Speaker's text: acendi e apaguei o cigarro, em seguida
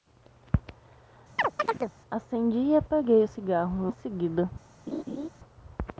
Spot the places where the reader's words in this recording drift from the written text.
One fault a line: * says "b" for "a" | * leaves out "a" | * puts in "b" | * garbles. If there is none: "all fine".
all fine